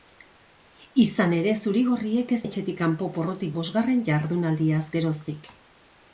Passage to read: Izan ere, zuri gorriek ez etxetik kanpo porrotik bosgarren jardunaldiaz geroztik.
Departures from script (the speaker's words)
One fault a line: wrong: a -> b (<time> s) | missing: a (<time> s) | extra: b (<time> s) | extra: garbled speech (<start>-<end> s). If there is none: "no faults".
no faults